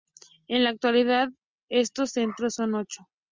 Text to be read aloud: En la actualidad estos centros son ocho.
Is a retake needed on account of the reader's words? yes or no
no